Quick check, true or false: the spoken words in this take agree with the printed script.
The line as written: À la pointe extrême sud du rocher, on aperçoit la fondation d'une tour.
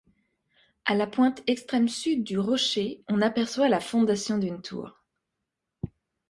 true